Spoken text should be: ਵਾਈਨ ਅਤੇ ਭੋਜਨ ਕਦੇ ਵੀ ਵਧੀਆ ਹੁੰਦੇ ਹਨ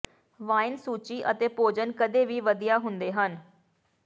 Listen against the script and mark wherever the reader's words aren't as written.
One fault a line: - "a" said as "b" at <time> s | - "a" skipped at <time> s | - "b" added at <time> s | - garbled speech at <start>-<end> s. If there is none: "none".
- "ਸੂਚੀ" added at 0.8 s